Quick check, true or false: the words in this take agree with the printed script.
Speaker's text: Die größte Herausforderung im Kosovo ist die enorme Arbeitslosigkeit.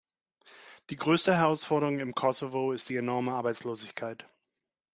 true